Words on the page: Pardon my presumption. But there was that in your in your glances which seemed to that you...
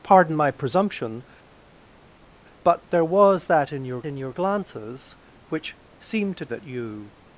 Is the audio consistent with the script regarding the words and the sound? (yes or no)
yes